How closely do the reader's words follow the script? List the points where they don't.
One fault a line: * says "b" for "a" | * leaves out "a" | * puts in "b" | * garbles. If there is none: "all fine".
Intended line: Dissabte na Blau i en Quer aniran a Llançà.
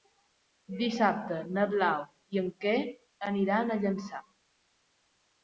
all fine